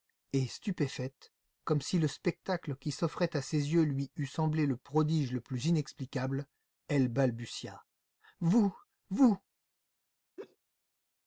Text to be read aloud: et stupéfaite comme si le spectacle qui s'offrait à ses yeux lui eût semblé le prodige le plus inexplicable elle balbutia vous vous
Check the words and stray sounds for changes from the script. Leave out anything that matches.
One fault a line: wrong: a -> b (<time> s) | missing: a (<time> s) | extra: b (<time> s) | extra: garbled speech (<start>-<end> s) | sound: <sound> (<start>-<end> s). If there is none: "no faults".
sound: laugh (10.4-10.6 s)